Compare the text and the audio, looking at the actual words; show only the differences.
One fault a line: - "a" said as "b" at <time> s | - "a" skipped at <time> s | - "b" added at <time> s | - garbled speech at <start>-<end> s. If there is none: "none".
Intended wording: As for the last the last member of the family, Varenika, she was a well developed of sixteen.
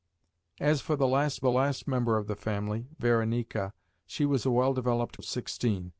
none